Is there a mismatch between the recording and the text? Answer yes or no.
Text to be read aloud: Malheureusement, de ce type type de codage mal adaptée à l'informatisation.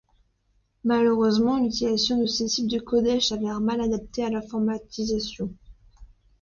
yes